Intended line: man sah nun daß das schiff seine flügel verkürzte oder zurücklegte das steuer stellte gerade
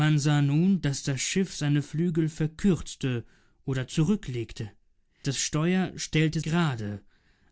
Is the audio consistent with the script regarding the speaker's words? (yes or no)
yes